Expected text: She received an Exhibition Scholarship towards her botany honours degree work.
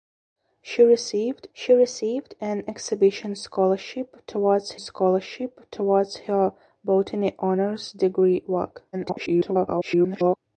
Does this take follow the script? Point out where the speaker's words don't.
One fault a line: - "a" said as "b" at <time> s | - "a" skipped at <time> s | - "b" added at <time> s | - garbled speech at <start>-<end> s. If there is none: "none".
- "she received" added at 1.5 s
- "Scholarship towards" added at 4.8 s
- garbled speech at 8.9-10.4 s